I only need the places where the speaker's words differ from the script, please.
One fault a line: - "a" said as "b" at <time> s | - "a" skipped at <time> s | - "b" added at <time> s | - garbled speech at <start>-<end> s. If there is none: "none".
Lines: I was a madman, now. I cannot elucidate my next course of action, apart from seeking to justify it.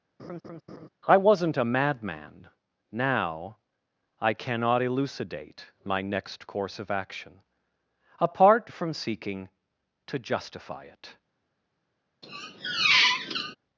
- "was" said as "wasn't" at 1.2 s